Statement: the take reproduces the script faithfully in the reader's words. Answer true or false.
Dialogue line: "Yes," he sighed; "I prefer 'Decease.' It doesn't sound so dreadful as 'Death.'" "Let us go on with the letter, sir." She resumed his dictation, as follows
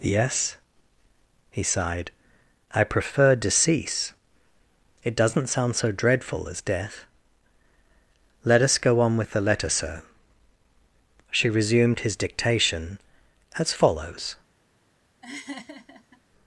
true